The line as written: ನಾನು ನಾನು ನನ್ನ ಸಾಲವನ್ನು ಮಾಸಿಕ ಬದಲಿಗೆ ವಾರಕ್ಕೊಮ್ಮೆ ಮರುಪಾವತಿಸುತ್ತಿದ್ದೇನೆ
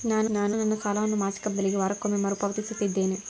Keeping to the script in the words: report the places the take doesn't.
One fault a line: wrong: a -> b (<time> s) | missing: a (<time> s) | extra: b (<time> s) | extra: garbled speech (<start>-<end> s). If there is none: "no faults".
no faults